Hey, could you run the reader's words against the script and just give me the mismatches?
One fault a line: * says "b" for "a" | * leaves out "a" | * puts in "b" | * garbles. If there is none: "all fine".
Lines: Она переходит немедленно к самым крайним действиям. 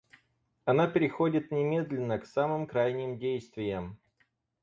all fine